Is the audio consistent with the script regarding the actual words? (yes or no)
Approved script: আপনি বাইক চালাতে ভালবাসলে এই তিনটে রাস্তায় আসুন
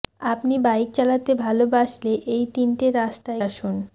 yes